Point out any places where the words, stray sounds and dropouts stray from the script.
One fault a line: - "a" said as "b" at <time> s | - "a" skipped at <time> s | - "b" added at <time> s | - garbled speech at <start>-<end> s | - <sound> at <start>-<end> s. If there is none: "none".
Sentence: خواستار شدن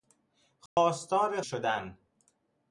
- dropout at 0.7-0.8 s